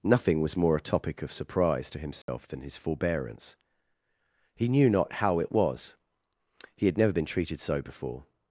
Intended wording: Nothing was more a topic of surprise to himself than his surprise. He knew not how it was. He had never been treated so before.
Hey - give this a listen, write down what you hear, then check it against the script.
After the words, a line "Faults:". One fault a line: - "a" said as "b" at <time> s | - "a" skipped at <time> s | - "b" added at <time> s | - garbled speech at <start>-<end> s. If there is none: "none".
Nothing was more a topic of surprise to himself than his forbearance. He knew not how it was. He had never been treated so before.
Faults:
- "surprise" said as "forbearance" at 2.8 s